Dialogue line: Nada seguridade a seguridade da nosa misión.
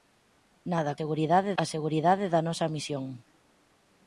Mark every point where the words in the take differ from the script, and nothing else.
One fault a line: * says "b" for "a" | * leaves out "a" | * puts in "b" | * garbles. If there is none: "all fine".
all fine